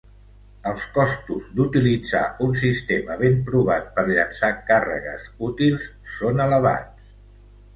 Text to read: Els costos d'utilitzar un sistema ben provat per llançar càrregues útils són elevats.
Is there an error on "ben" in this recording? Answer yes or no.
no